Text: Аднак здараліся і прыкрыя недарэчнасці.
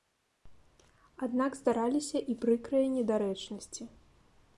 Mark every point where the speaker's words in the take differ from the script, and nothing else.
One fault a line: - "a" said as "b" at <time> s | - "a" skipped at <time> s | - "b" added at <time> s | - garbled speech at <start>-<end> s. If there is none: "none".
none